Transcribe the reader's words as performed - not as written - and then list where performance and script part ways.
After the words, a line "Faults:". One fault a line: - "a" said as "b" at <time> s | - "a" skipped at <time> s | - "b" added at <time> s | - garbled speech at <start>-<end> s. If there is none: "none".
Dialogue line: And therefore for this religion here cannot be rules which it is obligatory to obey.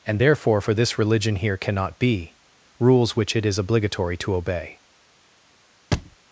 And therefore for this religion here cannot be rules which it is obligatory to obey.
Faults:
none